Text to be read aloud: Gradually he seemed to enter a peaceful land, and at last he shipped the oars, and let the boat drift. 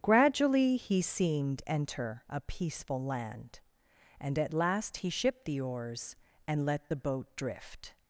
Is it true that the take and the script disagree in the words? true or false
true